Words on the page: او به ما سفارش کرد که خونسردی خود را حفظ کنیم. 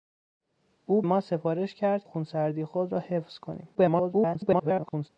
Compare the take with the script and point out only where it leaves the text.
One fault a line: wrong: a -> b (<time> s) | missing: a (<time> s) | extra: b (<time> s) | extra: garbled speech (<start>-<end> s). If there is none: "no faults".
missing: به (1.0 s)
missing: که (2.0 s)
extra: garbled speech (3.7-5.1 s)